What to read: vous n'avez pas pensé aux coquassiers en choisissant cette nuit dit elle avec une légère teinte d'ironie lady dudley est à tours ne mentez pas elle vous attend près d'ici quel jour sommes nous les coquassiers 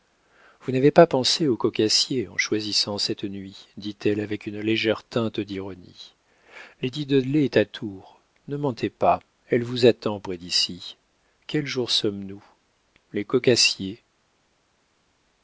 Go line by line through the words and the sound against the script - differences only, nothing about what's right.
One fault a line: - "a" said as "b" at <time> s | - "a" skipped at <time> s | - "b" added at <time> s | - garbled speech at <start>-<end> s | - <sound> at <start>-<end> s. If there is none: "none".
none